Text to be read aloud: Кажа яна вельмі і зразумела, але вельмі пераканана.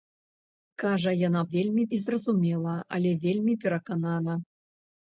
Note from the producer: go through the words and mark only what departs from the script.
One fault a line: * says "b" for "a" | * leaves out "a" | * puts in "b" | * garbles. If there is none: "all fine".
all fine